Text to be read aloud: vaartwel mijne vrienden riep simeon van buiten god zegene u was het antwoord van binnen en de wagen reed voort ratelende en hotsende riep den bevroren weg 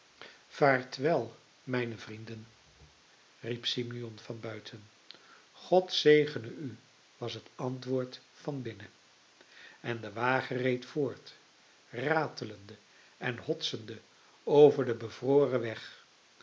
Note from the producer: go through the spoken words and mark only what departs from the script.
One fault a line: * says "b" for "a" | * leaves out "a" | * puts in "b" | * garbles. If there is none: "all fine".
* says "over" for "riep"